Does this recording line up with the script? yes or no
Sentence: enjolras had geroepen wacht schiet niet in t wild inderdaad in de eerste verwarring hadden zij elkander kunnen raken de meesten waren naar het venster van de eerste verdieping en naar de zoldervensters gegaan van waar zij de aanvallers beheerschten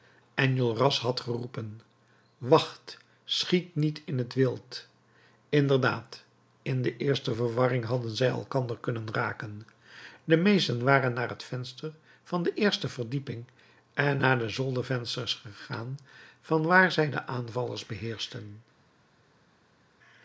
yes